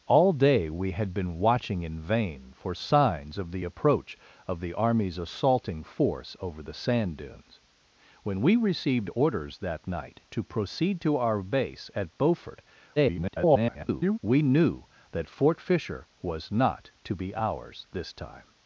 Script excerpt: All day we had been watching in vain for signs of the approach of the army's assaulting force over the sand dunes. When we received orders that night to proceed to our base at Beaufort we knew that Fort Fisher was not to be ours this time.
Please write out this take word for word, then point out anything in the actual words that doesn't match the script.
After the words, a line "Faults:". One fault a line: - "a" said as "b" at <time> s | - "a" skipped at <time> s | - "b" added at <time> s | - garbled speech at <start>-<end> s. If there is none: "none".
All day we had been watching in vain for signs of the approach of the army's assaulting force over the sand dunes. When we received orders that night to proceed to our base at Beaufort [garbled] we knew that Fort Fisher was not to be ours this time.
Faults:
- garbled speech at 13.0-14.2 s